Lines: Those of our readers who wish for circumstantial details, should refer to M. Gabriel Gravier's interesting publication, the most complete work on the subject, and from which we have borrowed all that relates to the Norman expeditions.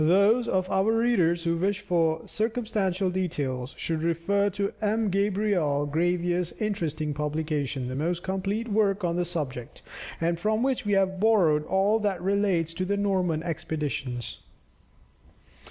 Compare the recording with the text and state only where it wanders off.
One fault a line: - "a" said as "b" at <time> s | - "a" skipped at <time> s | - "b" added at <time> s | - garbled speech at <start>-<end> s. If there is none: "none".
none